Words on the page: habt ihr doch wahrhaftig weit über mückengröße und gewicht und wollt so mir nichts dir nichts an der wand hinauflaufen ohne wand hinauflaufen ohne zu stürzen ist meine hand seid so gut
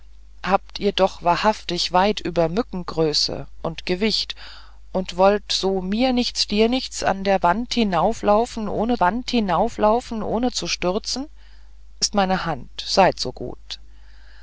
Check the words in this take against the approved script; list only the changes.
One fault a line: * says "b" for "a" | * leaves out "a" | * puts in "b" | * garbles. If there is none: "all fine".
all fine